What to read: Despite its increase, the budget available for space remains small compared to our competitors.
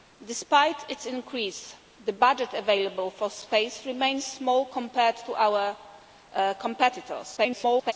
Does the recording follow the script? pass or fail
fail